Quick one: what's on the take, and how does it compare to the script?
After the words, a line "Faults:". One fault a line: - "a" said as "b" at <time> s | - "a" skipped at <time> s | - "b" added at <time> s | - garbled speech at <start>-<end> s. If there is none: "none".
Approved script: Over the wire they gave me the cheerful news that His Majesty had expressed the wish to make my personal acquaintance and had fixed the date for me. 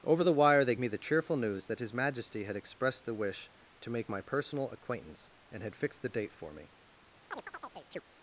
Over the wire they me the cheerful news that His Majesty had expressed the wish to make my personal acquaintance and had fixed the date for me.
Faults:
- "gave" skipped at 0.8 s